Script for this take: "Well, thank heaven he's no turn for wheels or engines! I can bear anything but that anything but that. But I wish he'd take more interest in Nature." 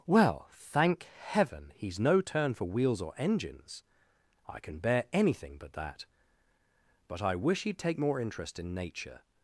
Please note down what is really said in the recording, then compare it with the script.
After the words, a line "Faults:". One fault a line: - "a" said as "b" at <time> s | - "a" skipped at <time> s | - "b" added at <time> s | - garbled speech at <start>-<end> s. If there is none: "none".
"Well, thank heaven he's no turn for wheels or engines! I can bear anything but that. But I wish he'd take more interest in Nature."
Faults:
- "anything but that" skipped at 6.1 s